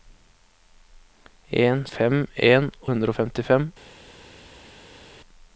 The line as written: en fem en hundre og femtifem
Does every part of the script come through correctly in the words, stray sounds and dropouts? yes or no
yes